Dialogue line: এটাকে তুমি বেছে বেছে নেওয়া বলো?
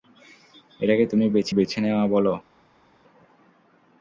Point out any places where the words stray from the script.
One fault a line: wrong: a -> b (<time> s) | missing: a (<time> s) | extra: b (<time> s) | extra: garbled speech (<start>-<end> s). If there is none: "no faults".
no faults